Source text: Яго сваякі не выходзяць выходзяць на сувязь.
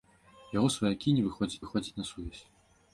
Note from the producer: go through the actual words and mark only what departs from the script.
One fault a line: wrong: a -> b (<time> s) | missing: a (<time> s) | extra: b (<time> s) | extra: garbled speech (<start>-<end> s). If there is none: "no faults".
no faults